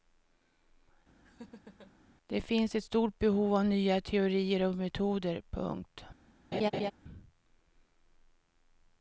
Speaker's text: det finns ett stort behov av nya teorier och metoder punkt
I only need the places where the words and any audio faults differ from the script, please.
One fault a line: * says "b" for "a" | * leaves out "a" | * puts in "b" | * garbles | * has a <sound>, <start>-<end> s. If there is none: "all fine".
* has a laugh, 1.2-1.9 s
* has a laugh, 6.5-6.9 s